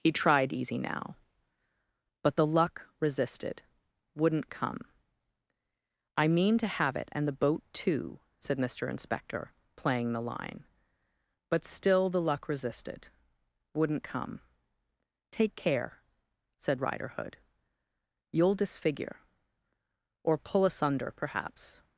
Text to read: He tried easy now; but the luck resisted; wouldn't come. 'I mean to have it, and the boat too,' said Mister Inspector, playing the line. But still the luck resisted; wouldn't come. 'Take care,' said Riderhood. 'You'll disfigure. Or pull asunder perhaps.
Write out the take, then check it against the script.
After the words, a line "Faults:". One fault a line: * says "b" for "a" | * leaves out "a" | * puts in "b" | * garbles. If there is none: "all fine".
He tried easy now; but the luck resisted; wouldn't come. 'I mean to have it, and the boat too,' said Mister Inspector, playing the line. But still the luck resisted; wouldn't come. 'Take care,' said Riderhood. 'You'll disfigure. Or pull asunder perhaps.
Faults:
all fine